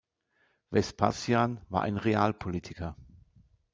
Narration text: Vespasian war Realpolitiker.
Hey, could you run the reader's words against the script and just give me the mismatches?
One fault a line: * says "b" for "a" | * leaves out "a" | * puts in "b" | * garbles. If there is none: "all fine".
* puts in "ein"